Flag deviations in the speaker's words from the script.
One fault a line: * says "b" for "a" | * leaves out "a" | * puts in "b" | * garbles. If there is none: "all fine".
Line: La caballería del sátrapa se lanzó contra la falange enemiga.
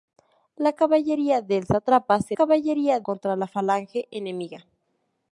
* says "caballería" for "lanzó"